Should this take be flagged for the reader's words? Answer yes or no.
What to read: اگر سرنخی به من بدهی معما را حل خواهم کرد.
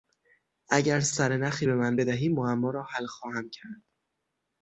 no